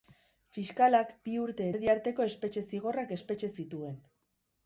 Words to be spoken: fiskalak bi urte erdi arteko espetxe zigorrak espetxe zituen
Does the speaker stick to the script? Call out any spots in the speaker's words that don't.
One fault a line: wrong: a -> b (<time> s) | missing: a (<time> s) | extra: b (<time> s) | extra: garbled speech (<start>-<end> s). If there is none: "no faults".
no faults